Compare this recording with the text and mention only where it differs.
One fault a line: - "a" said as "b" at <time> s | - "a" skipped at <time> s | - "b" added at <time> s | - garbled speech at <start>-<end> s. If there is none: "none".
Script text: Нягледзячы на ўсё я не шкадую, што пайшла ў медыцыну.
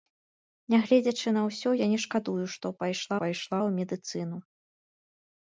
- "пайшла" added at 3.2 s